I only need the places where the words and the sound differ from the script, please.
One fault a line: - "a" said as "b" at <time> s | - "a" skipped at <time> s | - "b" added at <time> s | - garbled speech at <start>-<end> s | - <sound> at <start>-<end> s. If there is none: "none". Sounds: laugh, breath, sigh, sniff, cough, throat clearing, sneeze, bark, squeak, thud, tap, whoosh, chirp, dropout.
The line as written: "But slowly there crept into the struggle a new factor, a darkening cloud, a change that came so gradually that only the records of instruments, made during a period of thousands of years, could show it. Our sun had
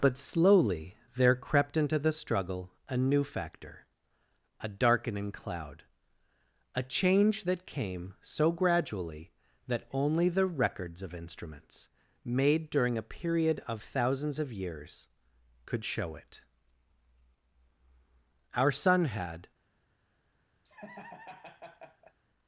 - laugh at 20.6-22.2 s